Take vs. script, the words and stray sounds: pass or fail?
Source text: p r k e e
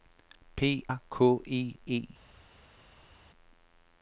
pass